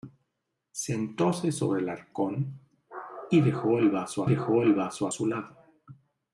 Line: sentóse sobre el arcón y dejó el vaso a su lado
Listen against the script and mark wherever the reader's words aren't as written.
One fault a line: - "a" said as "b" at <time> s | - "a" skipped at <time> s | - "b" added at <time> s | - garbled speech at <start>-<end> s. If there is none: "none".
- "dejó el vaso" added at 4.2 s